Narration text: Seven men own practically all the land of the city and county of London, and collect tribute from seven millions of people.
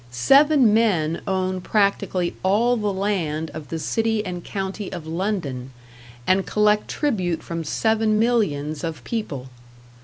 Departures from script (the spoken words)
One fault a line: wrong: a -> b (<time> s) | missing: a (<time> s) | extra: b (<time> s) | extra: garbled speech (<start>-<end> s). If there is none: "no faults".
no faults